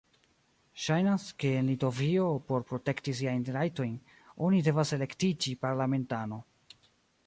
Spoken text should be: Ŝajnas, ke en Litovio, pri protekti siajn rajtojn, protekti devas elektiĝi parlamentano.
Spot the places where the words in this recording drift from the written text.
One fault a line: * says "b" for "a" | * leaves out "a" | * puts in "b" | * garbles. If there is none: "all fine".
* says "por" for "pri"
* says "oni" for "protekti"